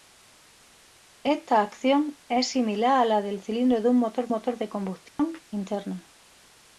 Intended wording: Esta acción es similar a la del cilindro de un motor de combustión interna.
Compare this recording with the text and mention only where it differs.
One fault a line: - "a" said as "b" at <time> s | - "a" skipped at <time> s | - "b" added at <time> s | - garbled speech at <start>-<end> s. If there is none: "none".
- "motor" added at 4.3 s